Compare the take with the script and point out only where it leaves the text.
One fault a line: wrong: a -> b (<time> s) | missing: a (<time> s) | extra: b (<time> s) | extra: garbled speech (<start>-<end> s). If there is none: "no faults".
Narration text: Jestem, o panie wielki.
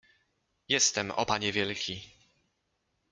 no faults